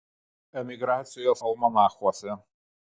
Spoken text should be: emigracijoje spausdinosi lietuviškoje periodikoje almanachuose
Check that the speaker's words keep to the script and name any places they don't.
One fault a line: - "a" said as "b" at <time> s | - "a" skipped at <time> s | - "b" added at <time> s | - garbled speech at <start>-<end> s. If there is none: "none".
- "spausdinosi lietuviškoje periodikoje" skipped at 1.4 s